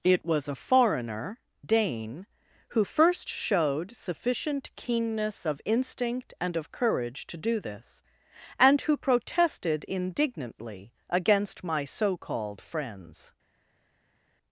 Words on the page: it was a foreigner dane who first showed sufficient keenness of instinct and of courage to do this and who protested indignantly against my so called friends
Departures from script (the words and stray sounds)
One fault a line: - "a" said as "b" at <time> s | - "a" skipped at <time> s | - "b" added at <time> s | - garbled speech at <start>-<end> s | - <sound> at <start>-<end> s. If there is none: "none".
none